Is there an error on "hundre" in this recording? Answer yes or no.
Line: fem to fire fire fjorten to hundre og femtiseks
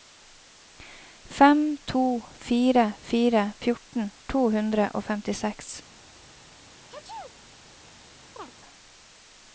no